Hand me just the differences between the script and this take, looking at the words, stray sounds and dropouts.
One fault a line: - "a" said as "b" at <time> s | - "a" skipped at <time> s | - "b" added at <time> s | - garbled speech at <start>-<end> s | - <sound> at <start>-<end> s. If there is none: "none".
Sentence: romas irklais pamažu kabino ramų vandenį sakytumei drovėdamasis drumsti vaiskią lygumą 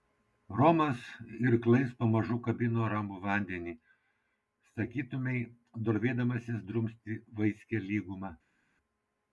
none